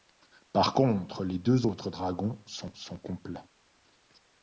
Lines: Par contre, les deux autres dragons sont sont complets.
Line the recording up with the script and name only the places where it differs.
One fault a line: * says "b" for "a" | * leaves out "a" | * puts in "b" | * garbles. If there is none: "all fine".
all fine